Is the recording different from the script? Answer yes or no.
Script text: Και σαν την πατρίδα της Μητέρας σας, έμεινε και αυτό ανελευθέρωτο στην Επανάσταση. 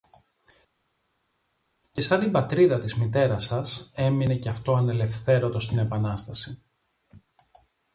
no